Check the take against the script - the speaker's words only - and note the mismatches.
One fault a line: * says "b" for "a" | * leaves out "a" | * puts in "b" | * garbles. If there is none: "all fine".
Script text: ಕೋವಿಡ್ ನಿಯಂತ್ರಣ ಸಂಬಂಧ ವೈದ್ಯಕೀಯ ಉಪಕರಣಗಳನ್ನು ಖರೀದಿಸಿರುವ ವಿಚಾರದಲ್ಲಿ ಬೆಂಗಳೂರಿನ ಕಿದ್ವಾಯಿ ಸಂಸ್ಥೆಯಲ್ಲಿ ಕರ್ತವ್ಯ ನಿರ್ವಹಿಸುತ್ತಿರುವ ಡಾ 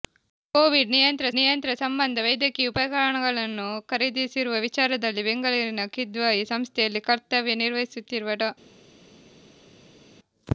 * puts in "ನಿಯಂತ್ರಣ"